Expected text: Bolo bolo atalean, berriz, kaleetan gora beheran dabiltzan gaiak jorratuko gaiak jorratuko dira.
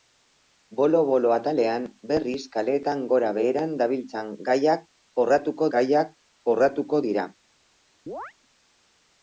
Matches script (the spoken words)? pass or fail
pass